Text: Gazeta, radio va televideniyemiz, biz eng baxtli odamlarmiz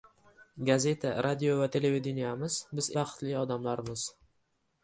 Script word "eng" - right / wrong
wrong